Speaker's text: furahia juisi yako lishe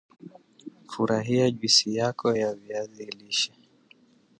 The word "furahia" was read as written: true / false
true